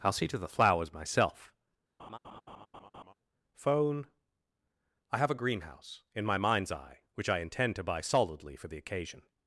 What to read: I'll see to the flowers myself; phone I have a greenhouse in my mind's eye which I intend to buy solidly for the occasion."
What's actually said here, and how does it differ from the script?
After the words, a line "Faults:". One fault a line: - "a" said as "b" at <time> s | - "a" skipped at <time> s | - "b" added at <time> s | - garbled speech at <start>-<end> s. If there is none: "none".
I'll see to the flowers myself; phone I have a greenhouse in my mind's eye which I intend to buy solidly for the occasion."
Faults:
none